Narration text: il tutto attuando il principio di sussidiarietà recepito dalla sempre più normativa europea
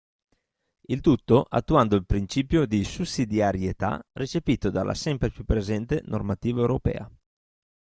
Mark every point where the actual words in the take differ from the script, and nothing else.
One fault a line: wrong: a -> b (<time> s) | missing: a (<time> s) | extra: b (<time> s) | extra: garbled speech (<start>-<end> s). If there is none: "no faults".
extra: presente (5.4 s)